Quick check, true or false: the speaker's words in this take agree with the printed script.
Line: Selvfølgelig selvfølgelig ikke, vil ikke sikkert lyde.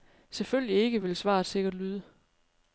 false